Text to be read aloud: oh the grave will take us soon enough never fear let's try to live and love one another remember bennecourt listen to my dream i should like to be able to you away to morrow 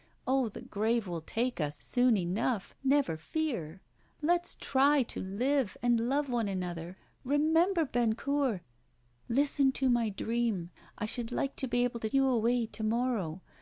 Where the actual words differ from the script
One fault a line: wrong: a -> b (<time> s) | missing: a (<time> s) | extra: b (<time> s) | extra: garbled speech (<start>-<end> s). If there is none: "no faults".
no faults